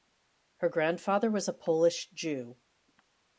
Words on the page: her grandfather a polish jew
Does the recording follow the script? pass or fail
fail